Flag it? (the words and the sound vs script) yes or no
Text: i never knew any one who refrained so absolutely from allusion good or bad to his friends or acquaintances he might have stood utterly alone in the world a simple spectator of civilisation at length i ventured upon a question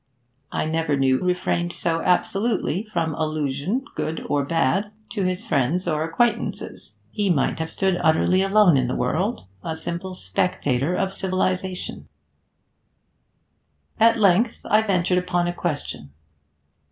yes